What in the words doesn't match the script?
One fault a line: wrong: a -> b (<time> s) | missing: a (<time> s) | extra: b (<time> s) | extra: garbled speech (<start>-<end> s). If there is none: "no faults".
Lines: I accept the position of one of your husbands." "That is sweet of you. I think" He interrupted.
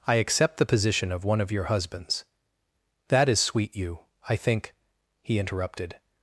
missing: of (3.7 s)